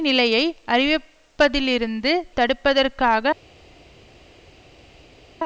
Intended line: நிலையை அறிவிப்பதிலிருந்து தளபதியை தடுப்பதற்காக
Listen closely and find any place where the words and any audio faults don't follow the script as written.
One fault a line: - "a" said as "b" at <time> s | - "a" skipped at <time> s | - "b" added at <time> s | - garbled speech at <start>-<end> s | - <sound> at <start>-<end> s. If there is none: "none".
- "தளபதியை" skipped at 2.1 s